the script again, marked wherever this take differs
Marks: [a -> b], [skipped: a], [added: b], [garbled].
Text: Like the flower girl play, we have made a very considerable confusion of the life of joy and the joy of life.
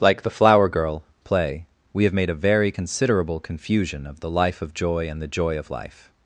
Like the flower girl play, we have made a very considerable confusion of the life of joy and the joy of life.